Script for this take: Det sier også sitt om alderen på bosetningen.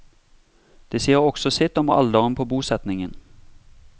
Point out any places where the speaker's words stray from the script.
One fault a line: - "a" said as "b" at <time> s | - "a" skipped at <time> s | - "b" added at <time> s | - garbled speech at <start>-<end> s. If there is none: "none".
none